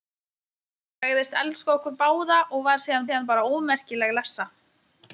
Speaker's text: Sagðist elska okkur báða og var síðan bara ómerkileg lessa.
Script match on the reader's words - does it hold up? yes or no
no